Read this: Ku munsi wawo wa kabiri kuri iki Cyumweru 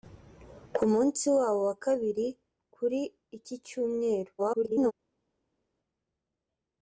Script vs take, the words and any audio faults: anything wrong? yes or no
yes